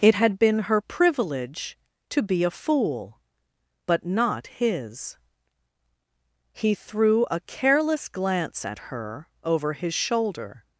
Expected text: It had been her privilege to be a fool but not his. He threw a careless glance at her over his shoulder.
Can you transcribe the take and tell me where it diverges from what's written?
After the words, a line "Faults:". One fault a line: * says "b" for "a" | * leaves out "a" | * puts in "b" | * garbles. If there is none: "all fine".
It had been her privilege to be a fool but not his. He threw a careless glance at her over his shoulder.
Faults:
all fine